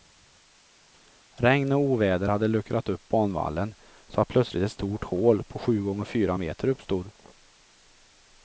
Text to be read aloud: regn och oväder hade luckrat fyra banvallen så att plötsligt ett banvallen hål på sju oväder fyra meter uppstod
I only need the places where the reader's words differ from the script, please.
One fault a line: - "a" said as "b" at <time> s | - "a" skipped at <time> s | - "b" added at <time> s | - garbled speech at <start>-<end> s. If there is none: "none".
- "fyra" said as "upp" at 2.9 s
- "banvallen" said as "stort" at 4.7 s
- "oväder" said as "gånger" at 5.8 s